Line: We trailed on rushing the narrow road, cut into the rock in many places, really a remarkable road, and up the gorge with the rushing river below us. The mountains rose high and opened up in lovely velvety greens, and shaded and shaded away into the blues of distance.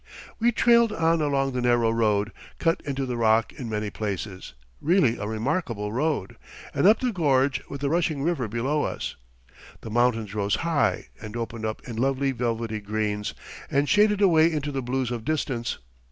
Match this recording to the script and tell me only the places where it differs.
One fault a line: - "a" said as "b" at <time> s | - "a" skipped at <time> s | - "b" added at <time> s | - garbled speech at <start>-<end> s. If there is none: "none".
- "rushing" said as "along" at 1.2 s
- "and shaded" skipped at 14.2 s